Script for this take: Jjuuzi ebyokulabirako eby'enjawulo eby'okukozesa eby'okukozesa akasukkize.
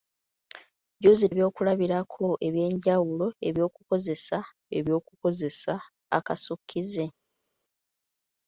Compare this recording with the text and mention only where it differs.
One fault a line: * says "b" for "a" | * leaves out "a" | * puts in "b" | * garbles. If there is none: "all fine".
all fine